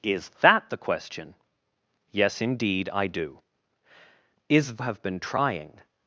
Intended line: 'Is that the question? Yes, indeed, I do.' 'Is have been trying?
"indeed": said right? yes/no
yes